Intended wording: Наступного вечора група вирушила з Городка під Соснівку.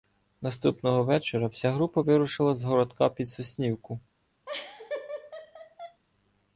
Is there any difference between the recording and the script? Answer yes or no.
yes